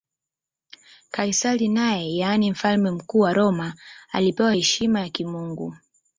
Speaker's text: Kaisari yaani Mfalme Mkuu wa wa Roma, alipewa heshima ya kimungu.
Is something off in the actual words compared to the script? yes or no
yes